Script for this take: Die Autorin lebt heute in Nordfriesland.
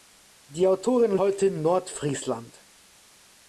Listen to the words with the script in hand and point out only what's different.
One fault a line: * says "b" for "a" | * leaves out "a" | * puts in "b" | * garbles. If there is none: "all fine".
* leaves out "lebt"